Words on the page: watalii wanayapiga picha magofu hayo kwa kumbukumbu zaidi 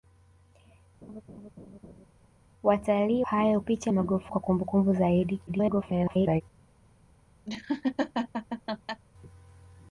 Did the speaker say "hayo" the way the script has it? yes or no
no